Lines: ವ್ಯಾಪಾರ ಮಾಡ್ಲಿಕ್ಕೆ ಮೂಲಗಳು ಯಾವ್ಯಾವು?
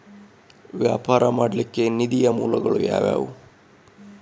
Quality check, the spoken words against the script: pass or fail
fail